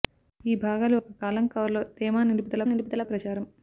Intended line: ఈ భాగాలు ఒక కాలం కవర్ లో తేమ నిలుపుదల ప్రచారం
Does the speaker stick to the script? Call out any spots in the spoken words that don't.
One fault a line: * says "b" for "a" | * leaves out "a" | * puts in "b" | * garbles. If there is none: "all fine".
* puts in "నిలుపుదల"